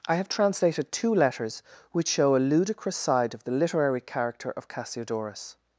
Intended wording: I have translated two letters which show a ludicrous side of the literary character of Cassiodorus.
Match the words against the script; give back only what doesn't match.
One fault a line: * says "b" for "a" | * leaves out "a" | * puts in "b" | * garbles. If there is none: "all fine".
all fine